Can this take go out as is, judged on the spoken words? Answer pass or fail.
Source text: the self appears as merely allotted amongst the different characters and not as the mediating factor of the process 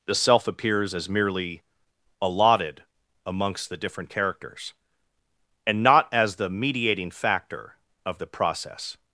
pass